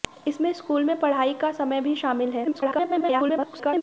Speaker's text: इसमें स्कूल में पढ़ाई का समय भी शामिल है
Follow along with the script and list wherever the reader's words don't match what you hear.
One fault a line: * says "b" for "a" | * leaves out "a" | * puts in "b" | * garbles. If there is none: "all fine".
* garbles